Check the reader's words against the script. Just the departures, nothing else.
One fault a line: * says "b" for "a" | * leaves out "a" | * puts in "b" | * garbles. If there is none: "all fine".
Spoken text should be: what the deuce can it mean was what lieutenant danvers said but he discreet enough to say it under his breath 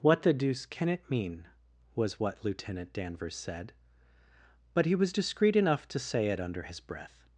* puts in "was"